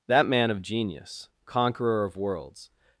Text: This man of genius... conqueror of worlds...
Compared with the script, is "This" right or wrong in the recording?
wrong